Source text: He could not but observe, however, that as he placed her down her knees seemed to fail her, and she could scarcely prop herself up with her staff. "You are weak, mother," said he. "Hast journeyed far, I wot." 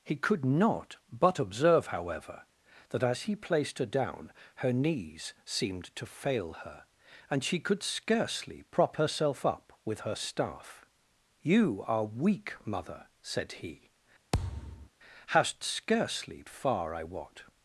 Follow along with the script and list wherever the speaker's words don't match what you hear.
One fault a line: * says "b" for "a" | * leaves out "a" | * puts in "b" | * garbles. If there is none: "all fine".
* says "scarcely" for "journeyed"